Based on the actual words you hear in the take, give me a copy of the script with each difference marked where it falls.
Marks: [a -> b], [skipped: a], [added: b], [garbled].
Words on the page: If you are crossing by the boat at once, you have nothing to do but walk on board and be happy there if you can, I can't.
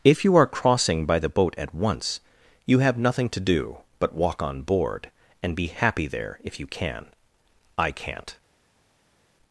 If you are crossing by the boat at once, you have nothing to do but walk on board and be happy there if you can, I can't.